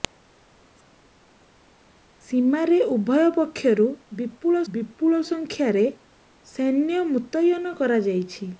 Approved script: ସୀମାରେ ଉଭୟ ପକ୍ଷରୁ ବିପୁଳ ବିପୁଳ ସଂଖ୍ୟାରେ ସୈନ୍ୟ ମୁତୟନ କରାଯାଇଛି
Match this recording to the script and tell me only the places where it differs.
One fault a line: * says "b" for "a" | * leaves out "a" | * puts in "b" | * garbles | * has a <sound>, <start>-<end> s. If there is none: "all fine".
all fine